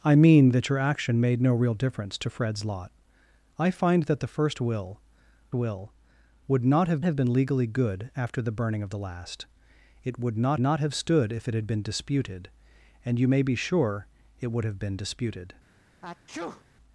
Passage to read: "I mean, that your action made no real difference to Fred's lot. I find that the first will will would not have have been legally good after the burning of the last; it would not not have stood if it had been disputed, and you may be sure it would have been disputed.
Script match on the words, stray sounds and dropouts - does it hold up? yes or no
no